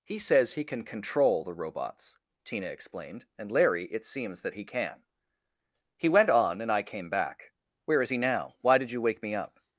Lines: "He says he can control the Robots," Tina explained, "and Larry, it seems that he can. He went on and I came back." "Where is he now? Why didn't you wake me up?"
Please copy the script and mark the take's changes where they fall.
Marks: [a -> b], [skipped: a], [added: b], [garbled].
"He says he can control the Robots," Tina explained, "and Larry, it seems that he can. He went on and I came back." "Where is he now? Why [didn't -> did] you wake me up?"